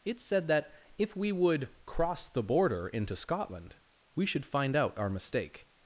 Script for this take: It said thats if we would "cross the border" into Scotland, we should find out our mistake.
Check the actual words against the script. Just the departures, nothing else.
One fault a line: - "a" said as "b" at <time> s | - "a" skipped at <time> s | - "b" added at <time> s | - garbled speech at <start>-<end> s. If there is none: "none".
- "thats" said as "that" at 0.5 s